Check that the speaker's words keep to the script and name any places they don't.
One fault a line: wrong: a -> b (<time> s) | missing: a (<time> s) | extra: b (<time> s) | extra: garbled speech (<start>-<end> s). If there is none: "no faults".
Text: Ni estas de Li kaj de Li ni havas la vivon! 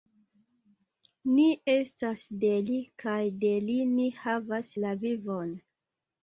no faults